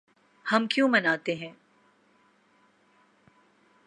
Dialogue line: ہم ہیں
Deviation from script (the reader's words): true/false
true